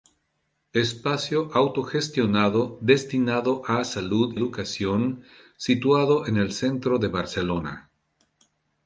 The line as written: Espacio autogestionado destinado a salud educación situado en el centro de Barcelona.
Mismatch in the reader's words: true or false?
false